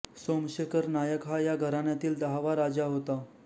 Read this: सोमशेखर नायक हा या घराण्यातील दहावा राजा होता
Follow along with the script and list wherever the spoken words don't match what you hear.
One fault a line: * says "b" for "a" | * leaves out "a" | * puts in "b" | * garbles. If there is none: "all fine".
all fine